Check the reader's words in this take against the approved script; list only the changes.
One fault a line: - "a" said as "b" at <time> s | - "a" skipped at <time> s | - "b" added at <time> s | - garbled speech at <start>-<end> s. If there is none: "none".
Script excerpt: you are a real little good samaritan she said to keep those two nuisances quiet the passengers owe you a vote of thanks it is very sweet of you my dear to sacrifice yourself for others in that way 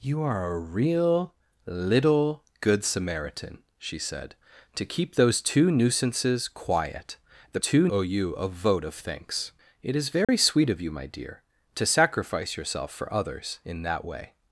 - "passengers" said as "two" at 7.6 s